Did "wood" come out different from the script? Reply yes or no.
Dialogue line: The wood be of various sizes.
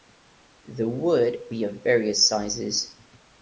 no